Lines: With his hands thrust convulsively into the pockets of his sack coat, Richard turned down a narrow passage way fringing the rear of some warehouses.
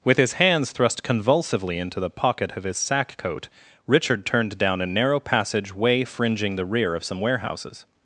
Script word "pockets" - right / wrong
wrong